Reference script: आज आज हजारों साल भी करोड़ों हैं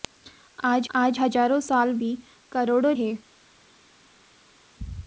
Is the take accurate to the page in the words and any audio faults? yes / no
yes